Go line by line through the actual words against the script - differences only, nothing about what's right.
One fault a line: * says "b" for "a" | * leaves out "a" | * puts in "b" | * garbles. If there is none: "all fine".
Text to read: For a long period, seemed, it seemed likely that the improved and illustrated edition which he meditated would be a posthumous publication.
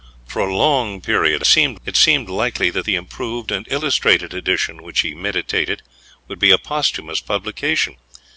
all fine